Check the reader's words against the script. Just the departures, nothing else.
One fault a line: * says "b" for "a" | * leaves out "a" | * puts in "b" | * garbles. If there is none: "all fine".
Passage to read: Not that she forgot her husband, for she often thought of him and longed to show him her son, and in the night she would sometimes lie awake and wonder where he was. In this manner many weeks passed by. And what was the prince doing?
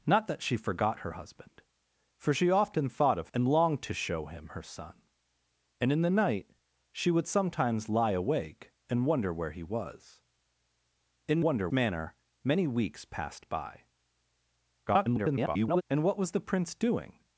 * leaves out "him"
* says "wonder" for "this"
* garbles